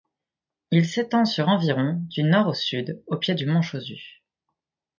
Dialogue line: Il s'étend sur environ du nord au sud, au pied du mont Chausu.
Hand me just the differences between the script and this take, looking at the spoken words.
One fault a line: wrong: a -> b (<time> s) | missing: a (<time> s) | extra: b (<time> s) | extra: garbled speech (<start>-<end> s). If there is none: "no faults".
no faults